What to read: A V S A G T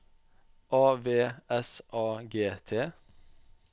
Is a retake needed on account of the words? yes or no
no